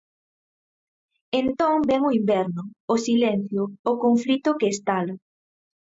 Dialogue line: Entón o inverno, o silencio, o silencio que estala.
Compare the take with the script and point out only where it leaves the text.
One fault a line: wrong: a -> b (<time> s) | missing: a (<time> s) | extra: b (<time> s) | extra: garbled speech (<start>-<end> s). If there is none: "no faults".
extra: vén (1.9 s)
wrong: silencio -> conflito (4.0 s)